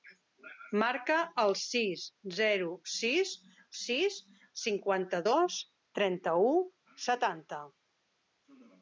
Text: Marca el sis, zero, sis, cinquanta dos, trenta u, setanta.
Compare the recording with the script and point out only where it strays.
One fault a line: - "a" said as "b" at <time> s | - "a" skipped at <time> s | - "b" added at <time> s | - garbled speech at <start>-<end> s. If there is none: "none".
- "sis" added at 3.8 s